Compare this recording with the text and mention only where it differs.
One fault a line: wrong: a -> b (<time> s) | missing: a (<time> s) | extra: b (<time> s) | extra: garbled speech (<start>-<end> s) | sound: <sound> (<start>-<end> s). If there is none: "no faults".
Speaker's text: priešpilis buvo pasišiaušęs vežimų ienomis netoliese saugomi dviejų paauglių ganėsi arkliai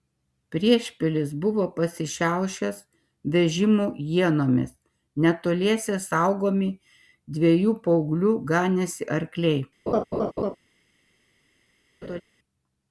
sound: laugh (9.9-10.6 s)
sound: laugh (12.0-12.2 s)